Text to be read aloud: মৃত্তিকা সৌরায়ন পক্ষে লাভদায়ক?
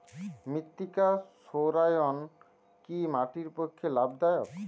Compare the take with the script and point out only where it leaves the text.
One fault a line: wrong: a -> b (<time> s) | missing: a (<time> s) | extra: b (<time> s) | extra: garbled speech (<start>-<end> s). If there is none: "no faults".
extra: কি মাটির (2.9 s)